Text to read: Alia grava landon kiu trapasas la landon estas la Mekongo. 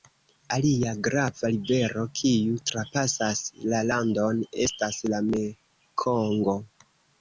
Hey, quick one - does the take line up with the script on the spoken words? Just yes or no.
no